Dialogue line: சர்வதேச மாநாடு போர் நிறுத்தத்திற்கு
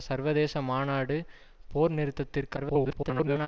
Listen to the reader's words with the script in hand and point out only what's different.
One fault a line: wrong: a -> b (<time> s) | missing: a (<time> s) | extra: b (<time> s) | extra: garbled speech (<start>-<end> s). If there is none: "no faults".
extra: garbled speech (2.6-3.5 s)